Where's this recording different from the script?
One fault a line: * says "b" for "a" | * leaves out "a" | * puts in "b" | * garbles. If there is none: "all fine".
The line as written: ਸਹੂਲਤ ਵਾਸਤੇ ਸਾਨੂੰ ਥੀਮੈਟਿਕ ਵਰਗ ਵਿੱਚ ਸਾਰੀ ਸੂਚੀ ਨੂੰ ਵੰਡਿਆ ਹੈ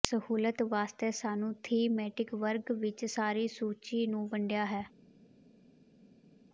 all fine